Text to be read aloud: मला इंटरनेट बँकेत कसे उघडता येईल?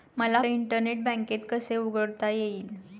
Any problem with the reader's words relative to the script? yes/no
no